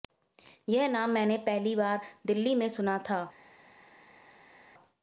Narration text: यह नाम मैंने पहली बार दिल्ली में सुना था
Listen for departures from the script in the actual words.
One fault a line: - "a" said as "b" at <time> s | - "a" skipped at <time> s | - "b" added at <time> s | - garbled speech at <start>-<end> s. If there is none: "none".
none